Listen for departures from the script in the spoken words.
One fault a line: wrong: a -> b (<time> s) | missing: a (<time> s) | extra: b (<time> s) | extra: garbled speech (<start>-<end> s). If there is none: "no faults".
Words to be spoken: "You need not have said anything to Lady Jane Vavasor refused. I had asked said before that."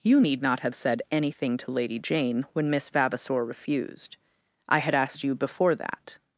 extra: when Miss (2.5 s)
wrong: said -> you (5.2 s)